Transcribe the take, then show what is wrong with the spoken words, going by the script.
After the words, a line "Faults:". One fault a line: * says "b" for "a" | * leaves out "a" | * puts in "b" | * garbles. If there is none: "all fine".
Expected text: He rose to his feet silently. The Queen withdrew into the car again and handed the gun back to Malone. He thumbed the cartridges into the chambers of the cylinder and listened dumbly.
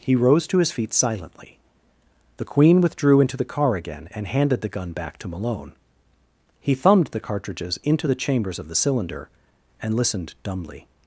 He rose to his feet silently. The Queen withdrew into the car again and handed the gun back to Malone. He thumbed the cartridges into the chambers of the cylinder and listened dumbly.
Faults:
all fine